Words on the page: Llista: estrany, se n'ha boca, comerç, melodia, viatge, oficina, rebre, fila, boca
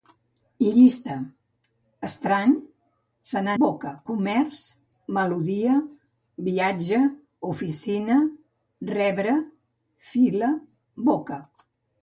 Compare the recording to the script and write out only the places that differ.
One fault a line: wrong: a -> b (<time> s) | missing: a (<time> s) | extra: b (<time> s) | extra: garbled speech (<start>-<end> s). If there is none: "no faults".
no faults